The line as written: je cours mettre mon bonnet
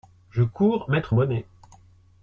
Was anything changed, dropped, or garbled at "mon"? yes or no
yes